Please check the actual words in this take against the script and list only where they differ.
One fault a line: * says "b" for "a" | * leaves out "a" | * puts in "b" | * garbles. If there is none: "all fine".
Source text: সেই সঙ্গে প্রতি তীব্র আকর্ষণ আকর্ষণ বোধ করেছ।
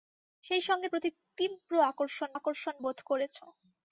all fine